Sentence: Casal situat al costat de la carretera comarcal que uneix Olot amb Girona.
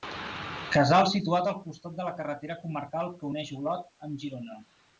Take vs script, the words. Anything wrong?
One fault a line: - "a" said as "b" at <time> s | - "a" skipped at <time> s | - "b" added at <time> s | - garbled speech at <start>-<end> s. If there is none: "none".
none